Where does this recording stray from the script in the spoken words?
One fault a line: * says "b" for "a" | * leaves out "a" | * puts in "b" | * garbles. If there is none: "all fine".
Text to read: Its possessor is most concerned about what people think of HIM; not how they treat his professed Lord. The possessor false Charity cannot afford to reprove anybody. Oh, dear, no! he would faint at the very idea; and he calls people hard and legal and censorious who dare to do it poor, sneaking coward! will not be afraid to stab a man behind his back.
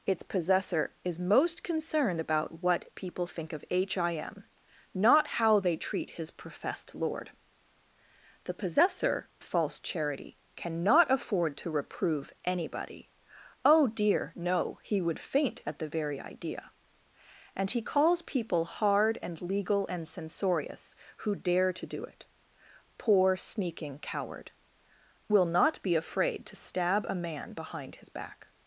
all fine